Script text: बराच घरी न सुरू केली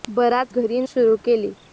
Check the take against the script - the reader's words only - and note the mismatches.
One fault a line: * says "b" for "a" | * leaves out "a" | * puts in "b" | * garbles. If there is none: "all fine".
all fine